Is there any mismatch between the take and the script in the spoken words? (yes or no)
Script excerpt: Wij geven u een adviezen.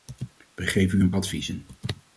no